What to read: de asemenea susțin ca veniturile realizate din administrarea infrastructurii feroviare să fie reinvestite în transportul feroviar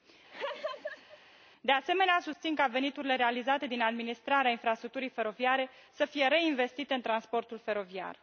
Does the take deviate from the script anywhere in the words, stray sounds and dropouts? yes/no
yes